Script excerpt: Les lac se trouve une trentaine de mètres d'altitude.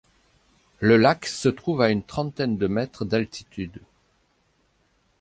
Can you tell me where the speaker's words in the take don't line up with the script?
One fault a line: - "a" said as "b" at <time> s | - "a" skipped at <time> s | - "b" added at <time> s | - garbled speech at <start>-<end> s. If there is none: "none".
- "Les" said as "Le" at 0.8 s
- "à" added at 1.8 s